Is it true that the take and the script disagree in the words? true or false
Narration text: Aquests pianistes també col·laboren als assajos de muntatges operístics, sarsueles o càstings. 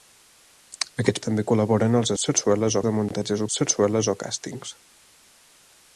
true